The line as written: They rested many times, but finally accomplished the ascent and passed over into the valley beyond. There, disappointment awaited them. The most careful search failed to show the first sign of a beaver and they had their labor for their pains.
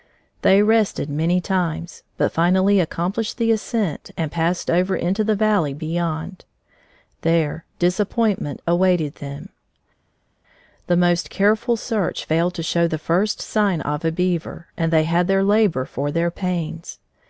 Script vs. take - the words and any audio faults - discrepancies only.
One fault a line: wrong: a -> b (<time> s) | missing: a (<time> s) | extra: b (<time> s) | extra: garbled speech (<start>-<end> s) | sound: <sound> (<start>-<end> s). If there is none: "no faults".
no faults